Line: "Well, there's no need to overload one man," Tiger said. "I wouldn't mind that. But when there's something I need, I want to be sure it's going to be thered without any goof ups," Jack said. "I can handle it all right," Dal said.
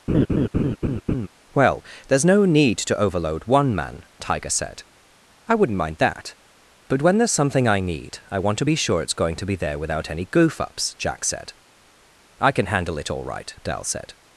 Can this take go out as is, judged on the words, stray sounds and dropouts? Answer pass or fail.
fail